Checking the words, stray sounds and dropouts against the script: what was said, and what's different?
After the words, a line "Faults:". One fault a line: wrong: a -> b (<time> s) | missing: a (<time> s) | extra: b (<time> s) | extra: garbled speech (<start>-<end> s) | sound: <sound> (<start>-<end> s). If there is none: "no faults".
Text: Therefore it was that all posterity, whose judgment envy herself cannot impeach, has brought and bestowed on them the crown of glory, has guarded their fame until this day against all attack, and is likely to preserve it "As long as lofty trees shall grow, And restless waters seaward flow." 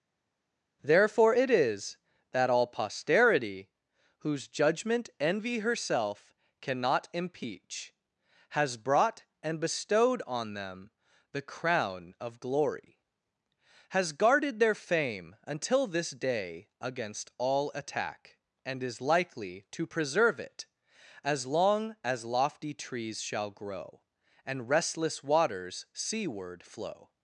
Therefore it is that all posterity, whose judgment envy herself cannot impeach, has brought and bestowed on them the crown of glory, has guarded their fame until this day against all attack, and is likely to preserve it "As long as lofty trees shall grow, And restless waters seaward flow."
Faults:
wrong: was -> is (1.5 s)